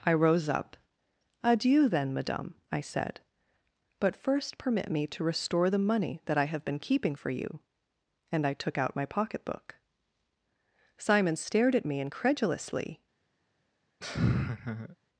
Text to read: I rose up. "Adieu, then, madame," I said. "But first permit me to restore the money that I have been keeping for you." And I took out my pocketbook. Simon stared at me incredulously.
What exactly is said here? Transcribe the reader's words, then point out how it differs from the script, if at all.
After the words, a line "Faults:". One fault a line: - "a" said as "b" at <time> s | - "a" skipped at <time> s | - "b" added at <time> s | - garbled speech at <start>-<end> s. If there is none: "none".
I rose up. "Adieu, then, madame," I said. "But first permit me to restore the money that I have been keeping for you." And I took out my pocketbook. Simon stared at me incredulously.
Faults:
none